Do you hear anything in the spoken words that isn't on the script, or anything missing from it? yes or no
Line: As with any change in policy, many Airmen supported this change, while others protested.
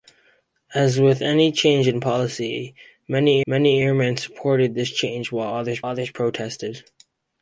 yes